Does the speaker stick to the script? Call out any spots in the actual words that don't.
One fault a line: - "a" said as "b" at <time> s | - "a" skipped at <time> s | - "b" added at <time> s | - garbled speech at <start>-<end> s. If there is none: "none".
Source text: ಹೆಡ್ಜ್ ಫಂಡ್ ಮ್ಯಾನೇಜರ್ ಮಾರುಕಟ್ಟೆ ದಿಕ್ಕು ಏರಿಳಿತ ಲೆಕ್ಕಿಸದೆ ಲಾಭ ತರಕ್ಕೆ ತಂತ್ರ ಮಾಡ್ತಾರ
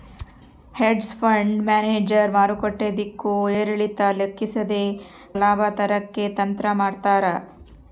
none